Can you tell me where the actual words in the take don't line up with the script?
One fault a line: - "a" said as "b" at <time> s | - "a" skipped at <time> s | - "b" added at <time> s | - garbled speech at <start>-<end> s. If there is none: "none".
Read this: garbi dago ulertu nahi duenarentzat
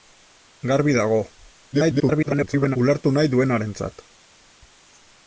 - garbled speech at 1.7-2.8 s